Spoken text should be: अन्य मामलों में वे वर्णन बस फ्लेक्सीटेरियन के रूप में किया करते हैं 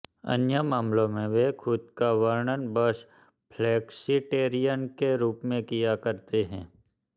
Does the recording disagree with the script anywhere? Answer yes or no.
yes